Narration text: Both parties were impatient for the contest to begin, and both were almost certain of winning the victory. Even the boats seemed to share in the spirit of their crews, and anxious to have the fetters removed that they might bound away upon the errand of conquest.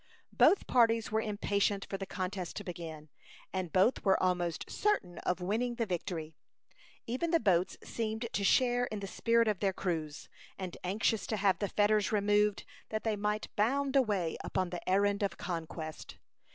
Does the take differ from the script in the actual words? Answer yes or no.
no